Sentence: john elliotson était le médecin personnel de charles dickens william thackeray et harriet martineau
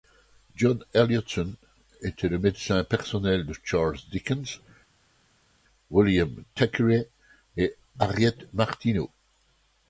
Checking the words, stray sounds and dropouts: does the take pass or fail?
pass